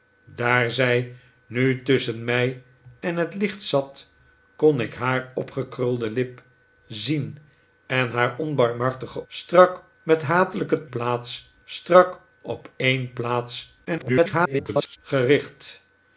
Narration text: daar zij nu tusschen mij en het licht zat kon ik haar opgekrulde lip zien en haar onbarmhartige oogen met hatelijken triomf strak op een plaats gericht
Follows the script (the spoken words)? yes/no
no